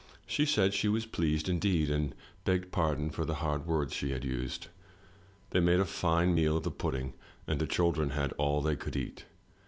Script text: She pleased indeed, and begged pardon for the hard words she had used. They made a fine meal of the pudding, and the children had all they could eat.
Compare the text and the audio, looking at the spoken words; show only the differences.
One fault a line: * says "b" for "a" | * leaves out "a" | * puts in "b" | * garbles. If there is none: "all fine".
* puts in "said she was"